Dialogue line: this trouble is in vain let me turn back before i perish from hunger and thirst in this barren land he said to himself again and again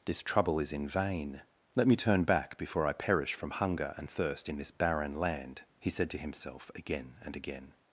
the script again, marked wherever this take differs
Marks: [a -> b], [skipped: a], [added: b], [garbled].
this trouble is in vain let me turn back before i perish from hunger and thirst in this barren land he said to himself again and again